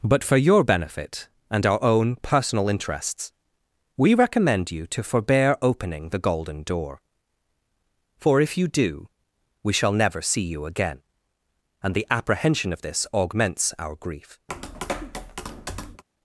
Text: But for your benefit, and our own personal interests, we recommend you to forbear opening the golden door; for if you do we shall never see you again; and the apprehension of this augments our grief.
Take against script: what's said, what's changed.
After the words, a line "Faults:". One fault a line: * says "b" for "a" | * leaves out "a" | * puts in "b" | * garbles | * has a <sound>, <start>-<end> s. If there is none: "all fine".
But for your benefit, and our own personal interests, we recommend you to forbear opening the golden door; for if you do we shall never see you again; and the apprehension of this augments our grief.
Faults:
* has a tap, 14.5-16.0 s